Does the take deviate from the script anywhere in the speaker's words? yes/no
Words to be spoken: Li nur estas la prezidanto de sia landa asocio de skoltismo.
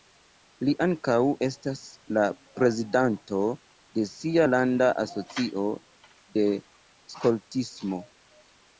yes